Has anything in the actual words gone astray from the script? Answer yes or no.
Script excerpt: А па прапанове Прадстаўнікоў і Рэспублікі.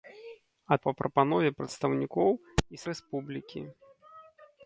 no